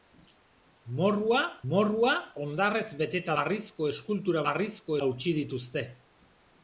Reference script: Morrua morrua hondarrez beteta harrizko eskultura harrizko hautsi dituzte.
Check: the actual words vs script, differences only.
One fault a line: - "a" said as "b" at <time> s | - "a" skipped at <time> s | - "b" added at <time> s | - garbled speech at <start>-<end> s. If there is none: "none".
none